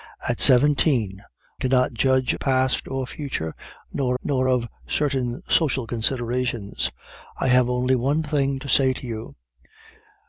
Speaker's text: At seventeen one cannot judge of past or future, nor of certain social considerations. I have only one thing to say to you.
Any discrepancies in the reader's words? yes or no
yes